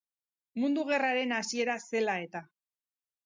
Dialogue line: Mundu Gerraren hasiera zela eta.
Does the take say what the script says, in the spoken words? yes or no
yes